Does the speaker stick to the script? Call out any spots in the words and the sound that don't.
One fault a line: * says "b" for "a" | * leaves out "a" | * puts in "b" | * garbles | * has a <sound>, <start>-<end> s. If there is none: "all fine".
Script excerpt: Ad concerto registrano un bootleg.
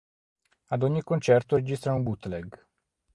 * puts in "ogni"